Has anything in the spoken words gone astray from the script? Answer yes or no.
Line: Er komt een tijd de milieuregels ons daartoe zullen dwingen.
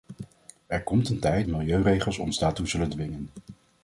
no